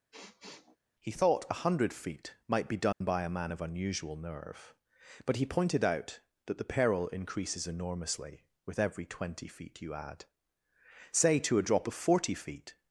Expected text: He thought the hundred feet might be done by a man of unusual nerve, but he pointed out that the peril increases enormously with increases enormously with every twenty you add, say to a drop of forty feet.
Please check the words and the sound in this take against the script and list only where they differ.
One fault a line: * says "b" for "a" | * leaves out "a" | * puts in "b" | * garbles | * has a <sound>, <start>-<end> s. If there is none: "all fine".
* has a sniff, 0.1-0.8 s
* says "a" for "the"
* has a dropout, 2.9-3.0 s
* leaves out "increases enormously with"
* puts in "feet"